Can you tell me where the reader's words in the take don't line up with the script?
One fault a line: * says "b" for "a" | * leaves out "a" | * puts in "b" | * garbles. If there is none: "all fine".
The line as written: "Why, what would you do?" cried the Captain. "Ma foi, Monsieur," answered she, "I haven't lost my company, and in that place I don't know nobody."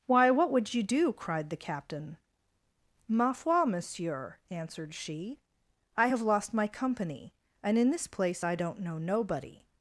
* says "have" for "haven't"
* says "this" for "that"